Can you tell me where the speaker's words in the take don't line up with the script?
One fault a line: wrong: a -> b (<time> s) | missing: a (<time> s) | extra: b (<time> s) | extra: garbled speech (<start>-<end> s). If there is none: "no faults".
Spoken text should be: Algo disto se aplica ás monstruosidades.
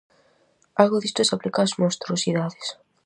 no faults